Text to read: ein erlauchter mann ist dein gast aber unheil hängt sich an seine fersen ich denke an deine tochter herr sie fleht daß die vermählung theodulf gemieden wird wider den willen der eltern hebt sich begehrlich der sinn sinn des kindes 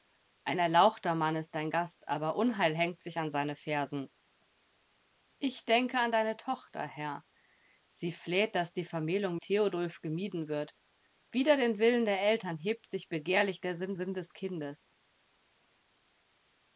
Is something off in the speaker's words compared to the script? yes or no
no